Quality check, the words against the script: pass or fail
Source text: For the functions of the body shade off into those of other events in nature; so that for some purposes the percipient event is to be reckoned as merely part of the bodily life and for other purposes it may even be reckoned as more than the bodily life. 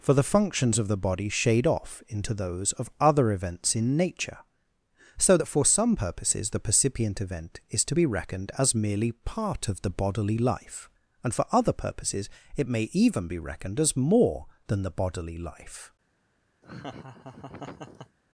pass